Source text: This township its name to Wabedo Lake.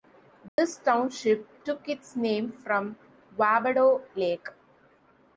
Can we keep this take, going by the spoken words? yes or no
no